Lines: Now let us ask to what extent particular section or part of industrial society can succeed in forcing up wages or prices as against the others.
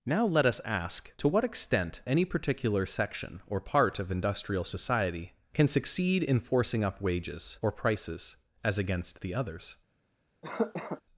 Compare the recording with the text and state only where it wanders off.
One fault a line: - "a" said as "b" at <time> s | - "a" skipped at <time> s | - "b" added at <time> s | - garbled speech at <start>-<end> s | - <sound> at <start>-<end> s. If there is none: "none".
- "any" added at 2.1 s
- cough at 10.4-11.0 s